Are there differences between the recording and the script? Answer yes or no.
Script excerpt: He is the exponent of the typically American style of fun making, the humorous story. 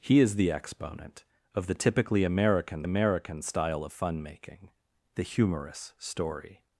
yes